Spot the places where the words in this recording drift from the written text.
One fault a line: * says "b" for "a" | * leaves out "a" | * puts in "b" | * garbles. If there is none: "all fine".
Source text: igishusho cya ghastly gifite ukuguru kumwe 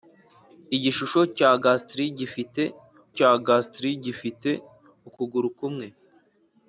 * puts in "cya ghastly gifite"